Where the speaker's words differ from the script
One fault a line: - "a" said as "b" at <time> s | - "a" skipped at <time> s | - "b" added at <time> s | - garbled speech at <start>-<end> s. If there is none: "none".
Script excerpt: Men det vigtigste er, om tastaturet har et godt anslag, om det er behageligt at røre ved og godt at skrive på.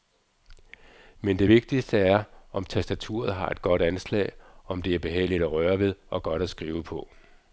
none